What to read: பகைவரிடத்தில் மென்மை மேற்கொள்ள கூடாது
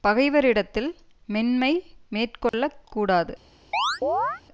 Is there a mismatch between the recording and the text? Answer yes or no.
no